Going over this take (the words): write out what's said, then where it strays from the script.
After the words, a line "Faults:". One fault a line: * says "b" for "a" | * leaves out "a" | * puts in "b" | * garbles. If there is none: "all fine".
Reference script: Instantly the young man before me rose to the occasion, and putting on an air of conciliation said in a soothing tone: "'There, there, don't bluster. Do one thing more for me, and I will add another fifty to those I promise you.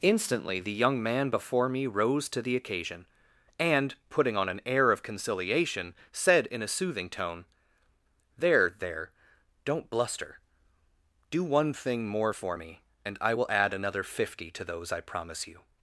Instantly the young man before me rose to the occasion, and putting on an air of conciliation said in a soothing tone: "'There, there, don't bluster. Do one thing more for me, and I will add another fifty to those I promise you.
Faults:
all fine